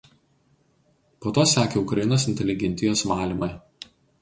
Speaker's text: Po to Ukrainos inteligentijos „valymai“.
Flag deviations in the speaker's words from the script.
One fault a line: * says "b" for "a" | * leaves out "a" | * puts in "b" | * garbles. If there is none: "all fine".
* puts in "sekė"